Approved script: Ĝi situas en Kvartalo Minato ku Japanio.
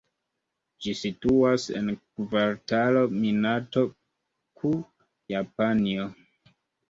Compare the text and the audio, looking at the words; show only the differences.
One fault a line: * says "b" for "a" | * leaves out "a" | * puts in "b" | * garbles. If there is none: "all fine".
all fine